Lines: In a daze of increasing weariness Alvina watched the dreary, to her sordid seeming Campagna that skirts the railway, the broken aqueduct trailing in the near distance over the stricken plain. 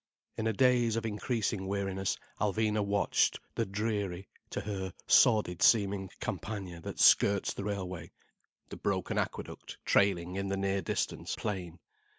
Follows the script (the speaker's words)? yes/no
no